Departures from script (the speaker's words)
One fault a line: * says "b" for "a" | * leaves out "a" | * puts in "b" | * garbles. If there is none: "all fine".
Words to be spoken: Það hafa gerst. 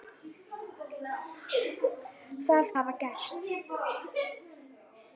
all fine